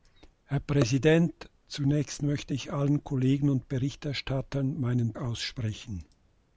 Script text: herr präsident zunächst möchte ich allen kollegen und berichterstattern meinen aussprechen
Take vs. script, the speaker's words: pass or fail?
pass